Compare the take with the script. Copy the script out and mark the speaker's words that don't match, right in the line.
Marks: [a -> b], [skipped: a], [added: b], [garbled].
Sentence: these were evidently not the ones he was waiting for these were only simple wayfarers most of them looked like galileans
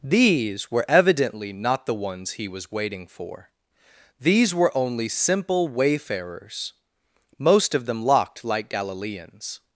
these were evidently not the ones he was waiting for these were only simple wayfarers most of them [looked -> locked] like galileans